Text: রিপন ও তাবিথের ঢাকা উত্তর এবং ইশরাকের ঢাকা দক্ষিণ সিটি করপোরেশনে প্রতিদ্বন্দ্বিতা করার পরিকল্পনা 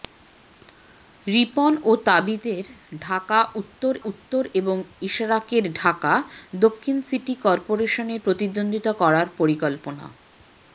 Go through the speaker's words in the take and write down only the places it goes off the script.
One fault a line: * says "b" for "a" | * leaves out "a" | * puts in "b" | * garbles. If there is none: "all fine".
* puts in "উত্তর"